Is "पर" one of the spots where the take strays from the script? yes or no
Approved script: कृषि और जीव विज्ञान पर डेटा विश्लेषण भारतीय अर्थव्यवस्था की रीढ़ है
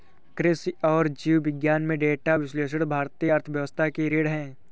yes